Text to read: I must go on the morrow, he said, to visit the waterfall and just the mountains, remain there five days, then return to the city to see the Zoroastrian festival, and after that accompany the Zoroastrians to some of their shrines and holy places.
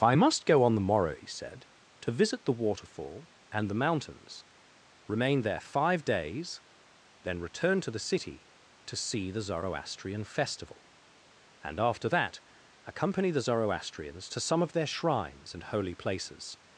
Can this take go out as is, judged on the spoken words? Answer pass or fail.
fail